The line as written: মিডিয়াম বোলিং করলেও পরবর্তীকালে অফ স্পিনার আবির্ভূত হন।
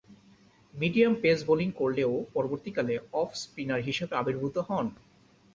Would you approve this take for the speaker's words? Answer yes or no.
no